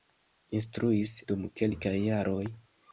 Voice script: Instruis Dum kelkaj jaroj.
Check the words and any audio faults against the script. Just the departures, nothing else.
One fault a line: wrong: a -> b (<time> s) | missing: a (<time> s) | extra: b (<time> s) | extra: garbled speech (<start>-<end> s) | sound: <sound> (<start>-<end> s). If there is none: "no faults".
no faults